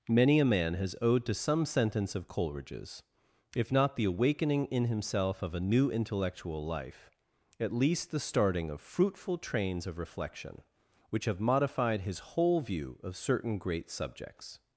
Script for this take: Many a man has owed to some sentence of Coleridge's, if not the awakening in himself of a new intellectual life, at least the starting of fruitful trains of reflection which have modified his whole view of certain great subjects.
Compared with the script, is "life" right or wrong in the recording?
right